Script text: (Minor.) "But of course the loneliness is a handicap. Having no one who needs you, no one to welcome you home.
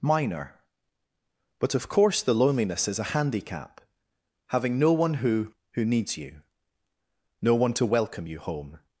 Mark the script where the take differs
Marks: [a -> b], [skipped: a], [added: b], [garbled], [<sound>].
(Minor.) "But of course the loneliness is a handicap. Having no one who [added: who] needs you, no one to welcome you home.